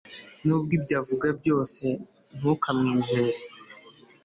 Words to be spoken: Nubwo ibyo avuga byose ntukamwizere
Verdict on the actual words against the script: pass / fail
pass